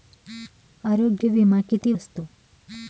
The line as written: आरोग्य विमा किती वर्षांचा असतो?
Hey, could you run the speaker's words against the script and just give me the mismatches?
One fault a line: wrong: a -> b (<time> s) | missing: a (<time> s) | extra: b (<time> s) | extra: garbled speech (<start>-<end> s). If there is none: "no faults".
missing: वर्षांचा (1.9 s)